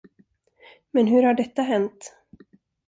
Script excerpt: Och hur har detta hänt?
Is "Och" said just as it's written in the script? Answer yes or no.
no